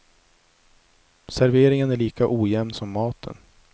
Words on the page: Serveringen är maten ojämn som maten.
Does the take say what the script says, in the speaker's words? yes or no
no